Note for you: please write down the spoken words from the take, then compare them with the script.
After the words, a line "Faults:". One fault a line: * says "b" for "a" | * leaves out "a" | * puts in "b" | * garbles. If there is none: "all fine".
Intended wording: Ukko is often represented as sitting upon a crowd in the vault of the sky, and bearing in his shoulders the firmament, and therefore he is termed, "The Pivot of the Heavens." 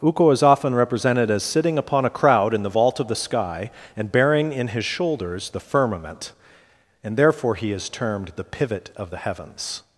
Ukko is often represented as sitting upon a crowd in the vault of the sky, and bearing in his shoulders the firmament, and therefore he is termed, "The Pivot of the Heavens."
Faults:
all fine